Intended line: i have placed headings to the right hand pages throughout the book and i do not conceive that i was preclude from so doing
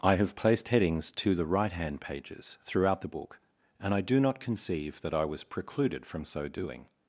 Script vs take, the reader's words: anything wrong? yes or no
yes